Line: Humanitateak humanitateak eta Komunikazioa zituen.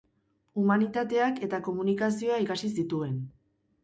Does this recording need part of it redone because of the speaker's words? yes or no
yes